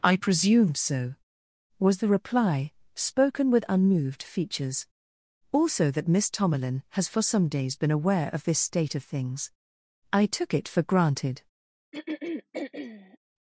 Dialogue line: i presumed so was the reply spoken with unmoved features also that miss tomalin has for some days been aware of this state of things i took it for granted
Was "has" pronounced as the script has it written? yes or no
yes